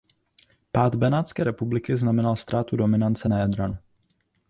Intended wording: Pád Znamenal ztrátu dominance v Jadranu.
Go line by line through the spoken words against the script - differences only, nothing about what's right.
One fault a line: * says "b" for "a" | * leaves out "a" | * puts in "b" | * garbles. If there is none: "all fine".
* puts in "Benátské republiky"
* says "na" for "v"